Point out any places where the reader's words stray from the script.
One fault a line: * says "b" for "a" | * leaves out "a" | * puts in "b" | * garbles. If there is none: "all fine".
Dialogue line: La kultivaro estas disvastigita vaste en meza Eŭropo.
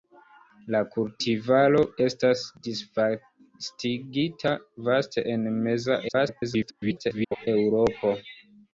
* garbles